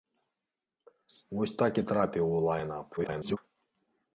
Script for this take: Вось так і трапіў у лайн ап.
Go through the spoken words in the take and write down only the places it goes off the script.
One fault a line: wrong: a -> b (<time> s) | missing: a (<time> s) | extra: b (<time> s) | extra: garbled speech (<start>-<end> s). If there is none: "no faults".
extra: garbled speech (3.0-3.4 s)